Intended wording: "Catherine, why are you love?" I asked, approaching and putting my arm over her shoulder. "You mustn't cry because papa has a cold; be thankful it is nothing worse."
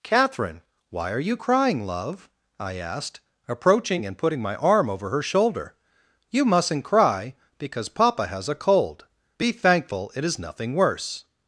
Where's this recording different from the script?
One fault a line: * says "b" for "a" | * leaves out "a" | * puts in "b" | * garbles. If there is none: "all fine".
* puts in "crying"